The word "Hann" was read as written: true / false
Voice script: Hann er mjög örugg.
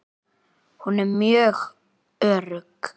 false